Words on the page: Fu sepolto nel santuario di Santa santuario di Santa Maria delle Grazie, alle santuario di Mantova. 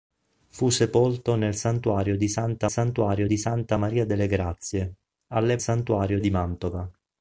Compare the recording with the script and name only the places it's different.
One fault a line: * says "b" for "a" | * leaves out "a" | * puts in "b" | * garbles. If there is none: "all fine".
all fine